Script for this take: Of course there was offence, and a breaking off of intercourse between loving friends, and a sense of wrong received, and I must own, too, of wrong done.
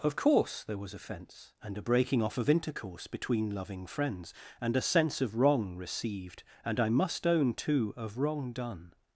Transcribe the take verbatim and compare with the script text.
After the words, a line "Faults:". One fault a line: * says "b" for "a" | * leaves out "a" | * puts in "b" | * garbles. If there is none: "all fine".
Of course there was offence, and a breaking off of intercourse between loving friends, and a sense of wrong received, and I must own, too, of wrong done.
Faults:
all fine